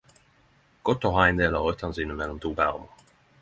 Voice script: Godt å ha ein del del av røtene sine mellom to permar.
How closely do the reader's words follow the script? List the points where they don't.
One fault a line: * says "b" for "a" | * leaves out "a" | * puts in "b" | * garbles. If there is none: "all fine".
* leaves out "del"